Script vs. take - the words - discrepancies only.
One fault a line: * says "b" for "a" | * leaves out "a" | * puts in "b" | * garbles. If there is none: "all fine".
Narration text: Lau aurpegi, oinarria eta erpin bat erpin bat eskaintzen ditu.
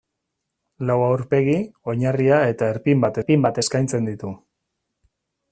all fine